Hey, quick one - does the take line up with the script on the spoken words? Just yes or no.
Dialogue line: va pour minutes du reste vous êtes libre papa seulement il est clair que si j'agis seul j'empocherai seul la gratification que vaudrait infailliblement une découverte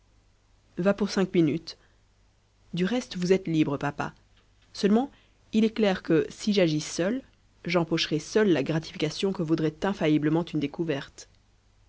no